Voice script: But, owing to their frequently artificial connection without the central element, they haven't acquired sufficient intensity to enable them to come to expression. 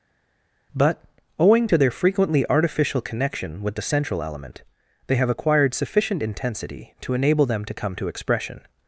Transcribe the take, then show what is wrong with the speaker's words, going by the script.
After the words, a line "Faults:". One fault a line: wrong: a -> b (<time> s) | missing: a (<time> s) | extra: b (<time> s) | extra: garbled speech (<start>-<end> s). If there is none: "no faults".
But, owing to their frequently artificial connection with the central element, they have acquired sufficient intensity to enable them to come to expression.
Faults:
wrong: without -> with (3.6 s)
wrong: haven't -> have (5.1 s)